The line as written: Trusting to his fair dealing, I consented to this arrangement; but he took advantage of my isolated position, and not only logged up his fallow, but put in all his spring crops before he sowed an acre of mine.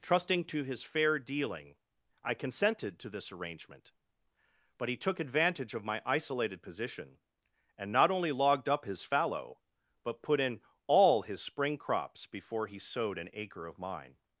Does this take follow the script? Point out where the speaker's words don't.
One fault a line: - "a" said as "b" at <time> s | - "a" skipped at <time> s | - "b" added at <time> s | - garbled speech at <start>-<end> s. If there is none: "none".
none